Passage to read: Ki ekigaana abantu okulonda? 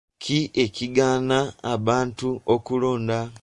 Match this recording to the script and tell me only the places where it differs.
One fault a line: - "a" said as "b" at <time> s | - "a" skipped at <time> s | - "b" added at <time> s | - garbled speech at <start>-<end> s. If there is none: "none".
none